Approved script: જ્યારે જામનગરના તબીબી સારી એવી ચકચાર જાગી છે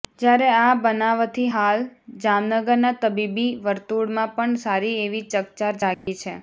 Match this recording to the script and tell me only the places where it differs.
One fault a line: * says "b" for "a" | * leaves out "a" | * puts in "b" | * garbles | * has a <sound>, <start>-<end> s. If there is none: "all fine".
* puts in "આ બનાવથી હાલ"
* puts in "વર્તુળમાં પણ"
* has a dropout, 5.9-6.1 s